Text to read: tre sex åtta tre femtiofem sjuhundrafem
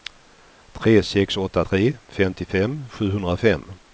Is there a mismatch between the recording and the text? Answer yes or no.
no